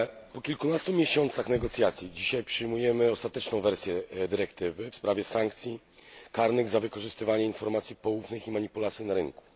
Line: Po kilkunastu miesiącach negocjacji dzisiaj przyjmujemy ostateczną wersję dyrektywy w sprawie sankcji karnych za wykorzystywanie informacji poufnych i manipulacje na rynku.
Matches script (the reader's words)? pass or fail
pass